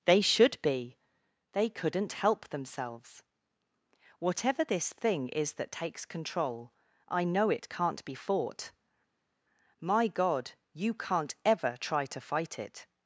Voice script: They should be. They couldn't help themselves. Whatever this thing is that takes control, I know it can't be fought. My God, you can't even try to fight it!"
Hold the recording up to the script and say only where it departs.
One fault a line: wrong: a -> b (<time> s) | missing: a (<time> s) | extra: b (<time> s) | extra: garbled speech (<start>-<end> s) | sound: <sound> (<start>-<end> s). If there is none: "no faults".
wrong: even -> ever (11.4 s)